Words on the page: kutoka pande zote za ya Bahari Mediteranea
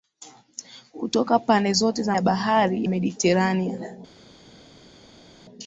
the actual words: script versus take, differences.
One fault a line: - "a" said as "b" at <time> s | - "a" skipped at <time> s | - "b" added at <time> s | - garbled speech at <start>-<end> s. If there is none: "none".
none